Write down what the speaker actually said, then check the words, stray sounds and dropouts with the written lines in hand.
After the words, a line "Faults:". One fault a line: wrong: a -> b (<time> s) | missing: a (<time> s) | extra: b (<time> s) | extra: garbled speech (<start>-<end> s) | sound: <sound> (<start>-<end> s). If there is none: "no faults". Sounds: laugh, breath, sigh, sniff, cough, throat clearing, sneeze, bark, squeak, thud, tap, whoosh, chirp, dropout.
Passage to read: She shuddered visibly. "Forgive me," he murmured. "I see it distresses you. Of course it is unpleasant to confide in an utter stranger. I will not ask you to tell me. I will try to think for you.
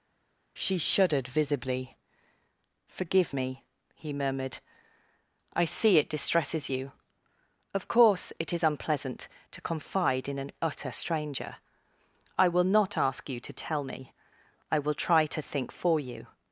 She shuddered visibly. "Forgive me," he murmured. "I see it distresses you. Of course it is unpleasant to confide in an utter stranger. I will not ask you to tell me. I will try to think for you.
Faults:
no faults